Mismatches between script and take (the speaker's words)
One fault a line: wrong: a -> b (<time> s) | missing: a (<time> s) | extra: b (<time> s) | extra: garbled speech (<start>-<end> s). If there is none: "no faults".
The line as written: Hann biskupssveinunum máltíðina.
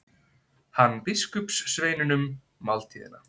no faults